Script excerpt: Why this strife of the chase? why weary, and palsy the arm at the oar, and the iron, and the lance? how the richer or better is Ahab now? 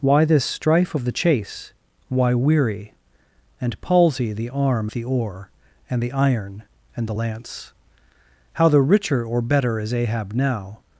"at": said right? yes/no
no